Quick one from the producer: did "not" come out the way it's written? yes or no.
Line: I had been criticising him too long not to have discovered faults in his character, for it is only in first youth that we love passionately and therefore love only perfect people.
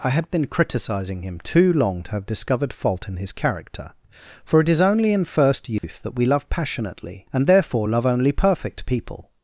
no